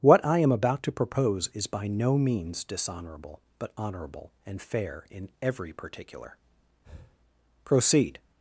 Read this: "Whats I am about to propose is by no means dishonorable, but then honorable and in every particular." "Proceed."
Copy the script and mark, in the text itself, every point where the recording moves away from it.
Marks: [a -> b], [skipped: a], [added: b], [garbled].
["Whats -> What] I am about to propose is by no means dishonorable, but [skipped: then] honorable and [added: fair] in every particular." "Proceed."